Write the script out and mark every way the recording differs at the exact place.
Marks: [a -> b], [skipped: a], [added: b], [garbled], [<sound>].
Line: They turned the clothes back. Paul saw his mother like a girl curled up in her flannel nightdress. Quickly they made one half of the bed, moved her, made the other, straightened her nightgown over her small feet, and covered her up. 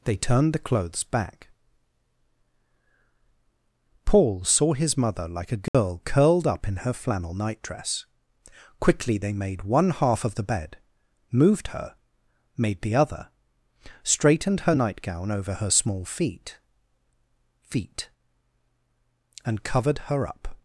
They turned the clothes back. Paul saw his mother like a girl [dropout] curled up in her flannel nightdress. Quickly they made one half of the bed, moved her, made the other, straightened her nightgown over her small feet, [added: feet] and covered her up.